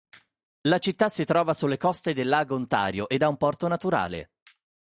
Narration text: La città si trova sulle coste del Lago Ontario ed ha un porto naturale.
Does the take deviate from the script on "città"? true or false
false